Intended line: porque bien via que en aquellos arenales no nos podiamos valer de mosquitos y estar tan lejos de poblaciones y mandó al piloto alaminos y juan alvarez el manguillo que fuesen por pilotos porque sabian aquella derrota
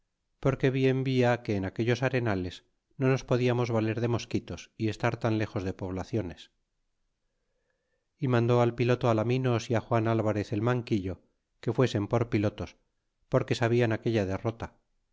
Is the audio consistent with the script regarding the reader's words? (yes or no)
yes